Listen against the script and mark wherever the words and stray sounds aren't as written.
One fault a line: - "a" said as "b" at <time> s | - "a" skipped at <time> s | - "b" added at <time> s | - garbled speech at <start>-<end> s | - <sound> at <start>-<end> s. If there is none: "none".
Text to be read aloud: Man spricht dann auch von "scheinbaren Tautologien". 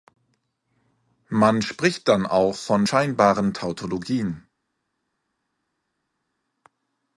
none